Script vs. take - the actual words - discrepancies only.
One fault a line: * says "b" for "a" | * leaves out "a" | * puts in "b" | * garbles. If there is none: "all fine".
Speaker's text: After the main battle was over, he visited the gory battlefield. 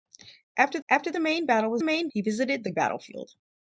* puts in "after"
* says "main" for "over"
* leaves out "gory"